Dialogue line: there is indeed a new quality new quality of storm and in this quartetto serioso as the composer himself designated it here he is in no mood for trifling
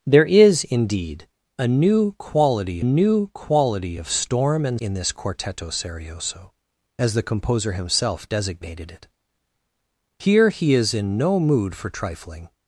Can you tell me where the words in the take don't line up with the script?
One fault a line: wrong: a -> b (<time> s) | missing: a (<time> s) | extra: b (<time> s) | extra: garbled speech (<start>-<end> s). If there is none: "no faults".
no faults